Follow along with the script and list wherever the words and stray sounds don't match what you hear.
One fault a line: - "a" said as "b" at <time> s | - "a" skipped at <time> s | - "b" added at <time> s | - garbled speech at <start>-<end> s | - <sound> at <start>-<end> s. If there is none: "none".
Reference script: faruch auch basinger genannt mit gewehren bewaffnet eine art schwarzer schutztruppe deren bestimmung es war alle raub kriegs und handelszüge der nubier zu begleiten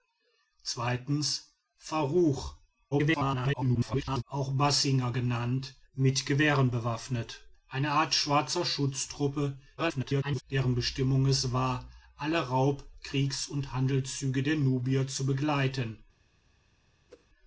- garbled speech at 2.9-4.2 s
- garbled speech at 9.8-10.4 s
- whoosh at 17.1-17.3 s